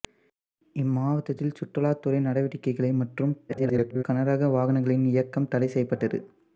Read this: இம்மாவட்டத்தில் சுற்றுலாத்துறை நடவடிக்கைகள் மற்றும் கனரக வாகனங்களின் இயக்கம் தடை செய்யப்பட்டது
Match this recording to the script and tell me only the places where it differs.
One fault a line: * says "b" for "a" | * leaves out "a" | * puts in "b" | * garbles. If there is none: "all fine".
* garbles